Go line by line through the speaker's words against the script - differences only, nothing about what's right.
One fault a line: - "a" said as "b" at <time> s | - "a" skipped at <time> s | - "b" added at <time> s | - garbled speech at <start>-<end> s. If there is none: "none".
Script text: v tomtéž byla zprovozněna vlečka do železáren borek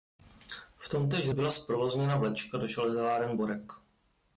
none